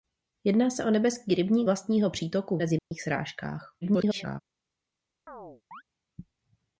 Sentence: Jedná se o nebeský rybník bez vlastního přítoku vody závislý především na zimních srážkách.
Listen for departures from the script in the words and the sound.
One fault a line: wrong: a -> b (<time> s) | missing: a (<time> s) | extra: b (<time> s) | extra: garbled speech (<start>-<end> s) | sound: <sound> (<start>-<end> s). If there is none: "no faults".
missing: bez (1.7 s)
missing: vody závislý především (2.6 s)
sound: dropout (2.8-2.9 s)
extra: garbled speech (3.8-4.4 s)
sound: chirp (5.3-5.8 s)